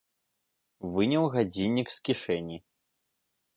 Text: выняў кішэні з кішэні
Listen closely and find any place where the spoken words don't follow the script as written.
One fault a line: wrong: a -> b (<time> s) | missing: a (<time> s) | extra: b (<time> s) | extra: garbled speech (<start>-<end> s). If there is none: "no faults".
wrong: кішэні -> гадзіннік (1.4 s)